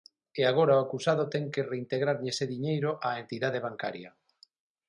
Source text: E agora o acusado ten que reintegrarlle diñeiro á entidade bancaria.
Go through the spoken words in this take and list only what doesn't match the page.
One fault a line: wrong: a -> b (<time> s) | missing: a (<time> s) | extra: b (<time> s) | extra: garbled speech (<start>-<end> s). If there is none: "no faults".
extra: ese (2.3 s)